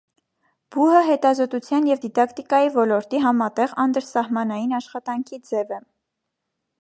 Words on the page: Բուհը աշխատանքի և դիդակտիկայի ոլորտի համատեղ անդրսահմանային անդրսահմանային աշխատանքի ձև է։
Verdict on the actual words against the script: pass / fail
fail